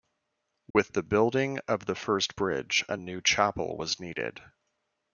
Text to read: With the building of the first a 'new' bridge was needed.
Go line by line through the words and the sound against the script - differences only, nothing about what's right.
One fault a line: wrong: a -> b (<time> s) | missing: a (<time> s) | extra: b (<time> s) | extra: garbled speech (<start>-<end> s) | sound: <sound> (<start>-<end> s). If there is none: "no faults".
sound: dropout (0.7-0.8 s)
extra: bridge (2.4 s)
wrong: bridge -> chapel (3.2 s)